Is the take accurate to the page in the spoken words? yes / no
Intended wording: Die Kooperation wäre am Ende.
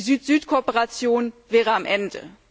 no